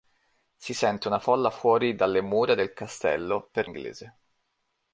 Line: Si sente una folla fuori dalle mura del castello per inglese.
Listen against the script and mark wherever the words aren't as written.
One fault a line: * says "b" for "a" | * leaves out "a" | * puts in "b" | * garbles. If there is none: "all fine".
all fine